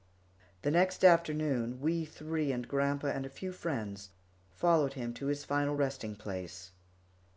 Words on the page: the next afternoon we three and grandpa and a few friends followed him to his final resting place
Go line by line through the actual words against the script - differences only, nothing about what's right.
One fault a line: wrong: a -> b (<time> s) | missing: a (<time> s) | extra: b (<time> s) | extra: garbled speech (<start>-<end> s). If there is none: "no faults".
no faults